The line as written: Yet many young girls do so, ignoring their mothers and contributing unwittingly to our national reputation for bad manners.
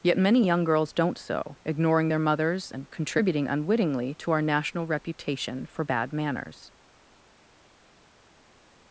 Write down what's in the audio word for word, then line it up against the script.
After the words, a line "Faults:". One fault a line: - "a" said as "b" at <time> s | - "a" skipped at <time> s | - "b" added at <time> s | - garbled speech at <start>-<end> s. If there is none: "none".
Yet many young girls don't so, ignoring their mothers and contributing unwittingly to our national reputation for bad manners.
Faults:
- "do" said as "don't" at 0.9 s